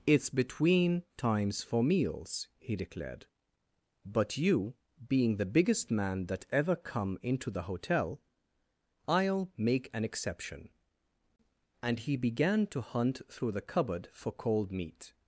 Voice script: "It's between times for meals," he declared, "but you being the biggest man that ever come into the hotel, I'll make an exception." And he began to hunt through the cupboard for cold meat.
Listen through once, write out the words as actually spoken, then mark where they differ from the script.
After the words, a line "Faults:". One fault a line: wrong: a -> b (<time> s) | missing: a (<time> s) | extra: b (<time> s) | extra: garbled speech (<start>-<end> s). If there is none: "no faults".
"It's between times for meals," he declared, "but you being the biggest man that ever come into the hotel, I'll make an exception." And he began to hunt through the cupboard for cold meat.
Faults:
no faults